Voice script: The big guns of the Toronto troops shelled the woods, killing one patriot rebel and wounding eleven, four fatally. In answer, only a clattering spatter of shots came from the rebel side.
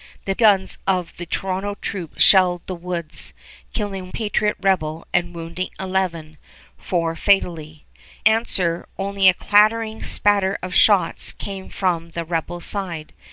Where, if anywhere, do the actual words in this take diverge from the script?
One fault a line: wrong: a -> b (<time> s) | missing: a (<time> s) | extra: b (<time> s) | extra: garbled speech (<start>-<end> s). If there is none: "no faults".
missing: big (0.3 s)
missing: one (4.1 s)
missing: In (7.8 s)